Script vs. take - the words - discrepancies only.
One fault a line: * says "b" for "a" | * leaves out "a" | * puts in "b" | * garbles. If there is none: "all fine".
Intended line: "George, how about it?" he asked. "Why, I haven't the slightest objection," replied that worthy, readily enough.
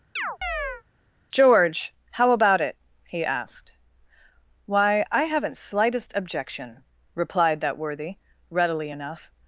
* leaves out "the"